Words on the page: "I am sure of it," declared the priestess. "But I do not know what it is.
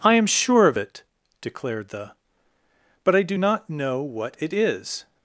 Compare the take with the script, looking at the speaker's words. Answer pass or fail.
fail